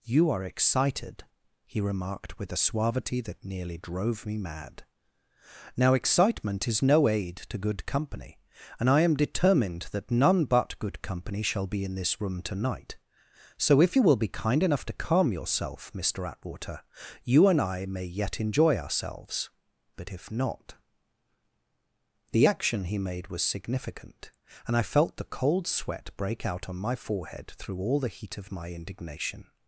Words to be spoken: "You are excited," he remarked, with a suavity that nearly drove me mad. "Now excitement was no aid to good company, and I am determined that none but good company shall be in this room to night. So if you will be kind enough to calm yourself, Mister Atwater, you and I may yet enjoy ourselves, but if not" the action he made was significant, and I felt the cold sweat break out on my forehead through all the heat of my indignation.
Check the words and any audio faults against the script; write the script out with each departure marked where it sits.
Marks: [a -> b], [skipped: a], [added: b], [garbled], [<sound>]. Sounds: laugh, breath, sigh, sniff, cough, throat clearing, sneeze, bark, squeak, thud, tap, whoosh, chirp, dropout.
"You are excited," he remarked, with a suavity that nearly drove me mad. "Now excitement [was -> is] no aid to good company, and I am determined that none but good company shall be in this room to night. So if you will be kind enough to calm yourself, Mister Atwater, you and I may yet enjoy ourselves, but if not" the action he made was significant, and I felt the cold sweat break out on my forehead through all the heat of my indignation.